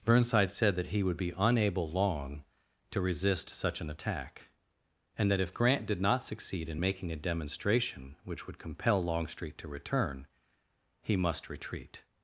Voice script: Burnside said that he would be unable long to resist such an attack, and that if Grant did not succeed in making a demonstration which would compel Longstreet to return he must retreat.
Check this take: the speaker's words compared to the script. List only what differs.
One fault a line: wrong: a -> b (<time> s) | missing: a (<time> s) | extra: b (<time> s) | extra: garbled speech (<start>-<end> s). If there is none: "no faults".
no faults